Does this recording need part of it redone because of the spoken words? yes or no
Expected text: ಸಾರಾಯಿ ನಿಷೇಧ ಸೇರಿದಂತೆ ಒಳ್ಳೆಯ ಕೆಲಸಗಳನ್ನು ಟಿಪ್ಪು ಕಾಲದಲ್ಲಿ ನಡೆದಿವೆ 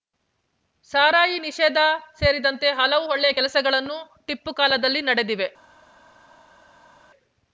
yes